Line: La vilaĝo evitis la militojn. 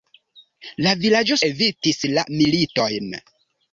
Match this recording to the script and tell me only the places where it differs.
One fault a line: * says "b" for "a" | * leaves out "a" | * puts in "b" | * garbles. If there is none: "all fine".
all fine